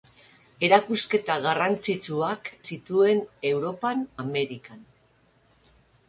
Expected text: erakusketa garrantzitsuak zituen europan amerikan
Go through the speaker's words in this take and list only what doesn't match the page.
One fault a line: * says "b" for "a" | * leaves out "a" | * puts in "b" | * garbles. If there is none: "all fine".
all fine